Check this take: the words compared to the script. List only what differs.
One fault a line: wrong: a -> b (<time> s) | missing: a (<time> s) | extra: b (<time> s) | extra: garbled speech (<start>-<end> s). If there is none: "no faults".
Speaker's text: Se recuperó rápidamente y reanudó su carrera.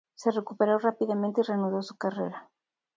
no faults